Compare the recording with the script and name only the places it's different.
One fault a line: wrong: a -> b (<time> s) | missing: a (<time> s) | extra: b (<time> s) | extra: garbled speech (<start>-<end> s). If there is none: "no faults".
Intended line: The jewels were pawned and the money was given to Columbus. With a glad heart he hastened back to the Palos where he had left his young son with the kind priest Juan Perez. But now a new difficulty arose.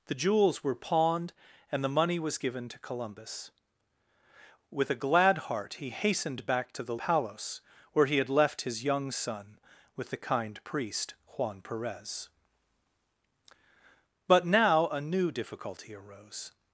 no faults